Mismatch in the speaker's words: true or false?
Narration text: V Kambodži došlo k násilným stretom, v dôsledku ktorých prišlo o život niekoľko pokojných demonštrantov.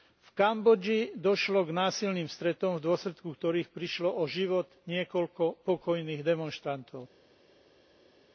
false